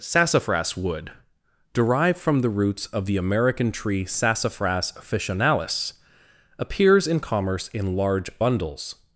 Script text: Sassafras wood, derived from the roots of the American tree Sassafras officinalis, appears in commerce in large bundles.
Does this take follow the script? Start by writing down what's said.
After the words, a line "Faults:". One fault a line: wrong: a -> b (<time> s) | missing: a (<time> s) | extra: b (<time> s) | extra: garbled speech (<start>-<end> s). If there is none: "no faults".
Sassafras wood, derived from the roots of the American tree Sassafras officinalis, appears in commerce in large bundles.
Faults:
no faults